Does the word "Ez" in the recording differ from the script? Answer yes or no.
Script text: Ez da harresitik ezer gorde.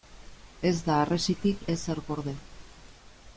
no